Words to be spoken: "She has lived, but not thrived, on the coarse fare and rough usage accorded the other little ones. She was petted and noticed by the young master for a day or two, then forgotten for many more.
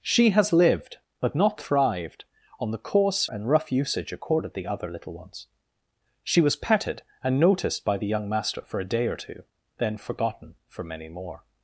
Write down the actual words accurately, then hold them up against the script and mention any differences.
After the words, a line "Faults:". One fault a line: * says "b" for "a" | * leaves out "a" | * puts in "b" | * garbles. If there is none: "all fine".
"She has lived, but not thrived, on the coarse and rough usage accorded the other little ones. She was petted and noticed by the young master for a day or two, then forgotten for many more.
Faults:
* leaves out "fare"